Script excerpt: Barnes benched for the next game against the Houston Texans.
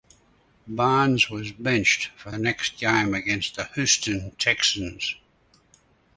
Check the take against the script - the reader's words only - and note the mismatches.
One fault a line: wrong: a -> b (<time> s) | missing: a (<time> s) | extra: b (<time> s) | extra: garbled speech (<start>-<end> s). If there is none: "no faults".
extra: was (1.3 s)